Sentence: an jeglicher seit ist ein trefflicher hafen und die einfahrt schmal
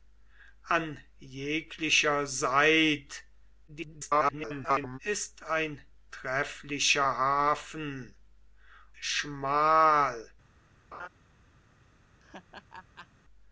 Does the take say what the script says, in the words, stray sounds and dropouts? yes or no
no